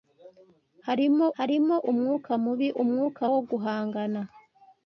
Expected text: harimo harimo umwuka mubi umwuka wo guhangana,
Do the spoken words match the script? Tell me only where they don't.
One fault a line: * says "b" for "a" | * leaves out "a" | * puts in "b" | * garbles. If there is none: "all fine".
all fine